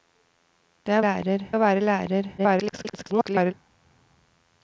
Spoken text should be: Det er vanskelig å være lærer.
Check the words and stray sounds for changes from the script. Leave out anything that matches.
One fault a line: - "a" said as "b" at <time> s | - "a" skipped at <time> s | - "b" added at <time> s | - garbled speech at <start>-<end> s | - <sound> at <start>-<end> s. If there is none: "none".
- "vanskelig" said as "lærer" at 1.0 s
- garbled speech at 2.4-3.5 s